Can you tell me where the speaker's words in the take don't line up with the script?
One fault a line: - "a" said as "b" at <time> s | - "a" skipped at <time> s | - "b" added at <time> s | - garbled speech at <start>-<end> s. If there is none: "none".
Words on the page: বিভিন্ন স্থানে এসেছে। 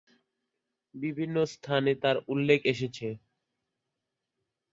- "তার উল্লেখ" added at 2.0 s